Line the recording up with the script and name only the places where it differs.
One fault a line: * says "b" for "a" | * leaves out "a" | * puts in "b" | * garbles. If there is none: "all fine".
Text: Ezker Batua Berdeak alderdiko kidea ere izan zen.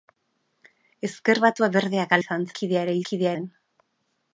* says "izan" for "alderdiko"
* says "kidea" for "izan"